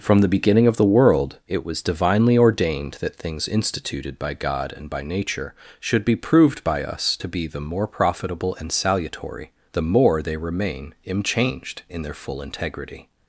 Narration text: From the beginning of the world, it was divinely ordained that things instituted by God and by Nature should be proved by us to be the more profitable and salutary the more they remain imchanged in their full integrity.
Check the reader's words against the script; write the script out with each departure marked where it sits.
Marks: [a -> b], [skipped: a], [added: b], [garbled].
From the beginning of the world, it was divinely ordained that things instituted by God and by Nature should be proved by us to be the more profitable and salutary the more they remain imchanged in their full integrity.